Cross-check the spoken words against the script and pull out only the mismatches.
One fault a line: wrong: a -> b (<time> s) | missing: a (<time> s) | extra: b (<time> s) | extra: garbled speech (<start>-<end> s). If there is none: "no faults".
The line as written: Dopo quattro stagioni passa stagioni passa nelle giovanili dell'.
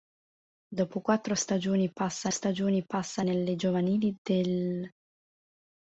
no faults